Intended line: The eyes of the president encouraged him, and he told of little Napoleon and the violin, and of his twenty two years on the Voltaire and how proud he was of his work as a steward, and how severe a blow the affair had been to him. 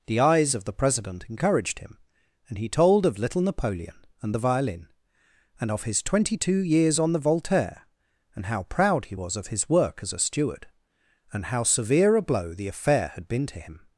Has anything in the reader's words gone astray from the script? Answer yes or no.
no